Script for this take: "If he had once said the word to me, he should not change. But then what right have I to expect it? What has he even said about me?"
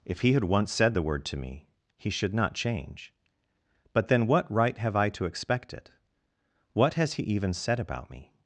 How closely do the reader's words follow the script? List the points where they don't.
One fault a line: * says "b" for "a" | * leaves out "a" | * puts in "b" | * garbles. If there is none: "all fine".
all fine